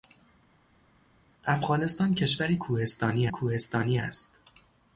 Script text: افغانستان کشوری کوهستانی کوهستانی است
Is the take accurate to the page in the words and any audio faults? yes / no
yes